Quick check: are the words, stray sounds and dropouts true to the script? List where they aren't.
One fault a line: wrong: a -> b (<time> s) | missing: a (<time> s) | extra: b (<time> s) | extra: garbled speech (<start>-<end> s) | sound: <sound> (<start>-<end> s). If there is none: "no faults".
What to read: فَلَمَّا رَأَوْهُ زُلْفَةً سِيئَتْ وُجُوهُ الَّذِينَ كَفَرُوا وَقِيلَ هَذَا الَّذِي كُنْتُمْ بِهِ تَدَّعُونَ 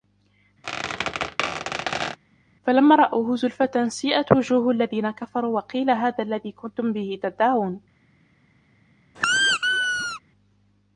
sound: squeak (0.6-2.2 s)
sound: squeak (9.1-10.2 s)